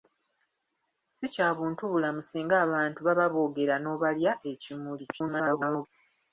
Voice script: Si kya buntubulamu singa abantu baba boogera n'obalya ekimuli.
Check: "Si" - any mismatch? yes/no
no